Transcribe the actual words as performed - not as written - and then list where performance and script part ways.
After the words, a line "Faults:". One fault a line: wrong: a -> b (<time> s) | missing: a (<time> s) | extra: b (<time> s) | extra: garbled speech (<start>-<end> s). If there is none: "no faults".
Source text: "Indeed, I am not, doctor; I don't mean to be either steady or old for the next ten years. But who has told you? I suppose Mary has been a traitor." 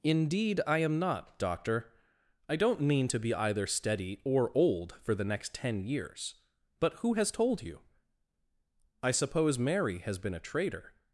"Indeed, I am not, doctor; I don't mean to be either steady or old for the next ten years. But who has told you? I suppose Mary has been a traitor."
Faults:
no faults